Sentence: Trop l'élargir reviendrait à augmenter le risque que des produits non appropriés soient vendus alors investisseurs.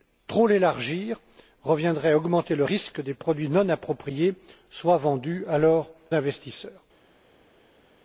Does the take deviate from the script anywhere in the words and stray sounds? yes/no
no